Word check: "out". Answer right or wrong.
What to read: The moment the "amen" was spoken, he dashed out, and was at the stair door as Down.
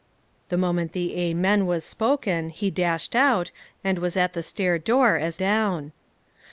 right